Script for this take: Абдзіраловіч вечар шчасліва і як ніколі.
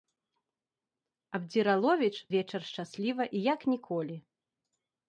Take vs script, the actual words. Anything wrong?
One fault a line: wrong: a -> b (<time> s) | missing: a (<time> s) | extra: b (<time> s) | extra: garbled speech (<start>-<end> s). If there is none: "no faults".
no faults